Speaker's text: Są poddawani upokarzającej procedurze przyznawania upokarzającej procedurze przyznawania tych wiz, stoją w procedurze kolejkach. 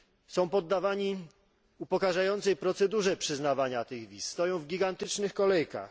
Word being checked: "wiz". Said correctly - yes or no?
yes